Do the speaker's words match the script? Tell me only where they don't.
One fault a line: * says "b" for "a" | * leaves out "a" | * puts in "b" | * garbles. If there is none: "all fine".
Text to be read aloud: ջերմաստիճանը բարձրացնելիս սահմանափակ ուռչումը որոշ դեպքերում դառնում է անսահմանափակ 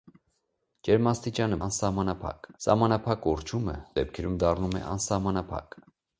* says "անսահմանափակ" for "բարձրացնելիս"
* leaves out "որոշ"